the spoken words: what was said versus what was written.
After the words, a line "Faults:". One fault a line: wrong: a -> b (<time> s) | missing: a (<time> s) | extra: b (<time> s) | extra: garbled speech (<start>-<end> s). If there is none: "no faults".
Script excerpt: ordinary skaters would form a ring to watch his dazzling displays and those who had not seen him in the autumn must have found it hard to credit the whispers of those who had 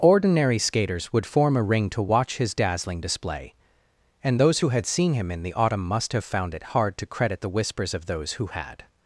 ordinary skaters would form a ring to watch his dazzling display and those who had seen him in the autumn must have found it hard to credit the whispers of those who had
Faults:
wrong: displays -> display (3.0 s)
missing: not (4.9 s)